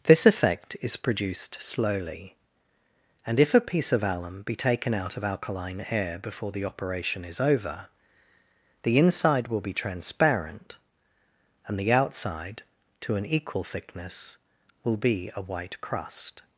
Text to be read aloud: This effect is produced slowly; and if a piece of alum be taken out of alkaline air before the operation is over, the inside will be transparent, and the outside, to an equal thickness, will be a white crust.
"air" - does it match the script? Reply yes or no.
yes